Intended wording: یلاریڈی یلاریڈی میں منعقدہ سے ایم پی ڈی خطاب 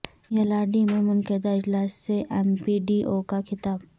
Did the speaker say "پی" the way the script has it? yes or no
yes